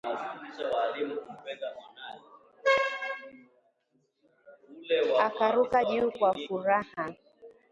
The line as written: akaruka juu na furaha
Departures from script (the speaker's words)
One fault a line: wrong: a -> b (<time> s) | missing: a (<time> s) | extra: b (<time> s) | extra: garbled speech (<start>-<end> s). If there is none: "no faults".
wrong: na -> kwa (6.1 s)